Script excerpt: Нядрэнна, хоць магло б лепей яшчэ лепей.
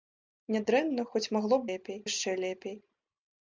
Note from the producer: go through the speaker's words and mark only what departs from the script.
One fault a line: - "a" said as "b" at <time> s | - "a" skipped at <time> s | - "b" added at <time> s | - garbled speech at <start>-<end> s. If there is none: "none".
none